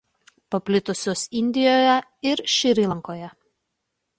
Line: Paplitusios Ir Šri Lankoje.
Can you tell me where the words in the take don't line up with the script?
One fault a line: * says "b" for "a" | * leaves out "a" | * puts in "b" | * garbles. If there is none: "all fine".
* puts in "Indijoje"